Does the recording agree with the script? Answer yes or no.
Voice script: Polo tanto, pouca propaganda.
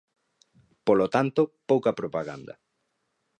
yes